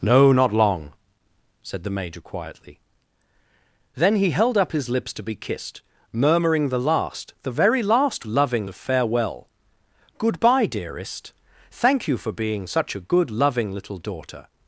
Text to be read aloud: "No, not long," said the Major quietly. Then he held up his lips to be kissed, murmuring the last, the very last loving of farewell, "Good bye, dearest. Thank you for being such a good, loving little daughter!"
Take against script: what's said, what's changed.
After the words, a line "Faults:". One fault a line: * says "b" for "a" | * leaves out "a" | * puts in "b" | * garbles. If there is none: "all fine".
"No, not long," said the Major quietly. Then he held up his lips to be kissed, murmuring the last, the very last loving of farewell, "Good bye, dearest. Thank you for being such a good, loving little daughter!"
Faults:
all fine